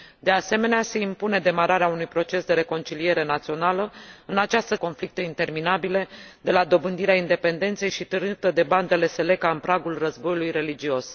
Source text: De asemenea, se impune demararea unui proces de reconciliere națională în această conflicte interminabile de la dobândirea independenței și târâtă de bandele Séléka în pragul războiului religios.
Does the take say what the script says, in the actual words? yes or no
yes